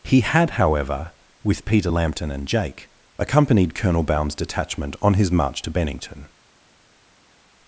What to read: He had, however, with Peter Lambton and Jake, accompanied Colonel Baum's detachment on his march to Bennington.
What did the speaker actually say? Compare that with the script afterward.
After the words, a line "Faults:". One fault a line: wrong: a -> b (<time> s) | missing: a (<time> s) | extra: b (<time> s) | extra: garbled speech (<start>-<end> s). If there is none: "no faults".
He had, however, with Peter Lambton and Jake, accompanied Colonel Baum's detachment on his march to Bennington.
Faults:
no faults